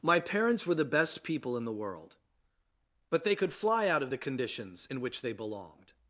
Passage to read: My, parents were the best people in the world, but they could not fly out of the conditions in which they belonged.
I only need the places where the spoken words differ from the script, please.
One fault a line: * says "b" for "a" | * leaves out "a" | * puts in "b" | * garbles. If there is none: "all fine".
* leaves out "not"